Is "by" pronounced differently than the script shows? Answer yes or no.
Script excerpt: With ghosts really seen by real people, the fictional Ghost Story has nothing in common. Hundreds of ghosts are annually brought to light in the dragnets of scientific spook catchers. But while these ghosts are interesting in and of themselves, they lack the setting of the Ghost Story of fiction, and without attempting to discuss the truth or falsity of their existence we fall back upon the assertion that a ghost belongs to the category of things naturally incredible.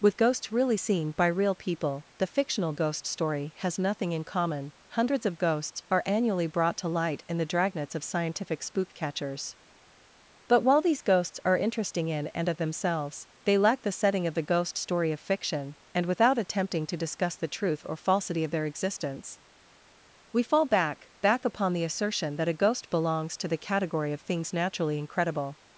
no